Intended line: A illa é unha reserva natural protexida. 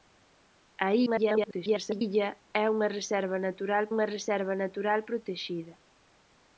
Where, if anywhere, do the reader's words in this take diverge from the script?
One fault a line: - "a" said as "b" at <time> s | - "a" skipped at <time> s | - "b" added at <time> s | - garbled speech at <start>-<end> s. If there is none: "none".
- garbled speech at 1.1-2.0 s
- "unha reserva natural" added at 3.9 s